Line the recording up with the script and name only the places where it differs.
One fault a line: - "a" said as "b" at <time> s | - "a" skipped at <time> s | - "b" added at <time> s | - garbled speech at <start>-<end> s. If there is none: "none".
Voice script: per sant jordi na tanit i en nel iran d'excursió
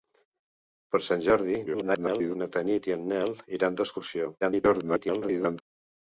- garbled speech at 1.7-2.4 s
- garbled speech at 4.4-5.6 s